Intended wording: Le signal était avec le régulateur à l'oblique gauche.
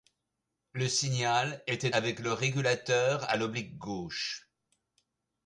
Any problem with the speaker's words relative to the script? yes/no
no